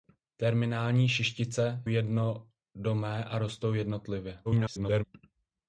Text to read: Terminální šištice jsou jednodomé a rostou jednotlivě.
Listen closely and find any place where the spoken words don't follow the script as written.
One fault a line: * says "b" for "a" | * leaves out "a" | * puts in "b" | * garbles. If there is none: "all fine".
* leaves out "jsou"
* garbles